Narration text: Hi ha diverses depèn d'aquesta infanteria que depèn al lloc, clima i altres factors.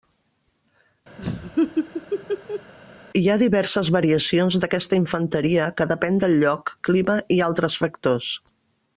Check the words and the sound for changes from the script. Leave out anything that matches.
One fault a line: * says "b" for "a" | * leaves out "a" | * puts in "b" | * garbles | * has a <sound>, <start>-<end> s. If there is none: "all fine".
* has a laugh, 1.2-2.7 s
* says "variacions" for "depèn"
* says "del" for "al"